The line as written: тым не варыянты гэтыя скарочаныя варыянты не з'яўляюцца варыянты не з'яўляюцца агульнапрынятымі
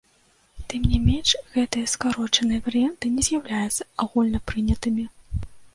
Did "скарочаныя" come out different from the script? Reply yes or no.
no